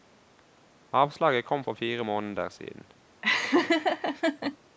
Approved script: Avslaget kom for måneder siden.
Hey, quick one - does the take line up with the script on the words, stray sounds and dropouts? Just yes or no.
no